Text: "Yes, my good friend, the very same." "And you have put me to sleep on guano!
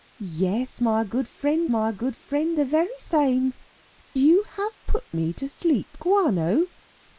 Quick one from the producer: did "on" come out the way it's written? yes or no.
no